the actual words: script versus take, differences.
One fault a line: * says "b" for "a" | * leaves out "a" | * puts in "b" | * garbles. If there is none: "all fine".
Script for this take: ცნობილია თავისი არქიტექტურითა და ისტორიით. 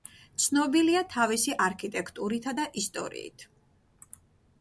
all fine